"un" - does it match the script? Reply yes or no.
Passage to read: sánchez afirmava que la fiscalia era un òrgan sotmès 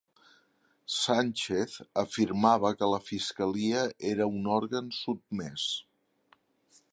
yes